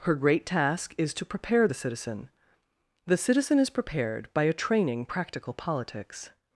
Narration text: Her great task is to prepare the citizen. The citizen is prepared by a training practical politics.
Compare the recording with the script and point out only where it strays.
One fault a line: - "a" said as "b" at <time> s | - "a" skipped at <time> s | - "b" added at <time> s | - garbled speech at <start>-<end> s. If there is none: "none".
none